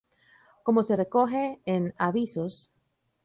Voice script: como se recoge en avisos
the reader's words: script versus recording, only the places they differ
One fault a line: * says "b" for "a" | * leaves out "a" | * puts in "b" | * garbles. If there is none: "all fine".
all fine